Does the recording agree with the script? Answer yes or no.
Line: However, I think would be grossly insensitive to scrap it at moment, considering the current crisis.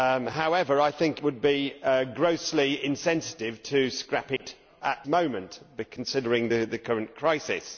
yes